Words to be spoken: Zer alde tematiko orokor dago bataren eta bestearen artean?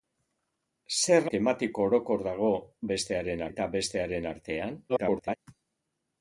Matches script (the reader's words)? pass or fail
fail